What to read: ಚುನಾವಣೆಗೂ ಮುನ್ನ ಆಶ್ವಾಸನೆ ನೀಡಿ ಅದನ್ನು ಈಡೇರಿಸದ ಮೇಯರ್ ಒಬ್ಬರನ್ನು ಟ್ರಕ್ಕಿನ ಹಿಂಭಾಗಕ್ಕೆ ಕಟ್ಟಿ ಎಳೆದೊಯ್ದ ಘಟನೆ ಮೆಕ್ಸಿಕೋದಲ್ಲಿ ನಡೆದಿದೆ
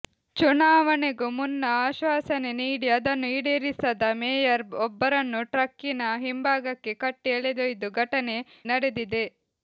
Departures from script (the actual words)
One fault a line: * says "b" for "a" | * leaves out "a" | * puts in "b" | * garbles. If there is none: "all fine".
* leaves out "ಮೆಕ್ಸಿಕೋದಲ್ಲಿ"